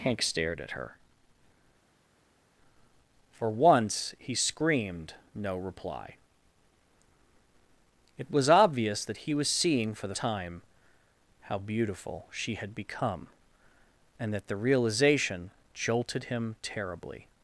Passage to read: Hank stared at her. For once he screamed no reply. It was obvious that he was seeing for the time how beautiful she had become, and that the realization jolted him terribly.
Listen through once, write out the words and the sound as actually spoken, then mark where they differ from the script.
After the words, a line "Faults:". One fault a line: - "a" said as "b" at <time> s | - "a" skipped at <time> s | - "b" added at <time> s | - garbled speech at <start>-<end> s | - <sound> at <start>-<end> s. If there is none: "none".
Hank stared at her. For once he screamed no reply. It was obvious that he was seeing for the time how beautiful she had become, and that the realization jolted him terribly.
Faults:
none